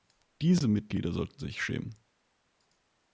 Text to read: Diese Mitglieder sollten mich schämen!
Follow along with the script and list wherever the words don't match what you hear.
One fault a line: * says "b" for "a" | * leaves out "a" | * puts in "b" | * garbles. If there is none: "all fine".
* says "sich" for "mich"